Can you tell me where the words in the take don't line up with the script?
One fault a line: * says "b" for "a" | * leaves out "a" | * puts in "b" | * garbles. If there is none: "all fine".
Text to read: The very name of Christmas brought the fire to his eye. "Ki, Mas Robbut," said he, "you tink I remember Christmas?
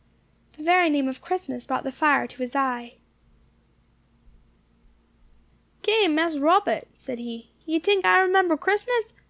all fine